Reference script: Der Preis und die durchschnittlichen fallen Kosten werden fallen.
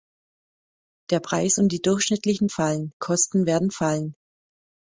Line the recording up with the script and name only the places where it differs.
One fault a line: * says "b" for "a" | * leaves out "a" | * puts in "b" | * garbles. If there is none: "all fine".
all fine